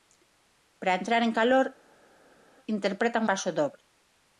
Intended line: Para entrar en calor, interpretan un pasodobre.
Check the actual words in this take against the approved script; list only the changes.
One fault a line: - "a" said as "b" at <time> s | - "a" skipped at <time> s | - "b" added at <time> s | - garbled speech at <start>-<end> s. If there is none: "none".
- "un" skipped at 3.3 s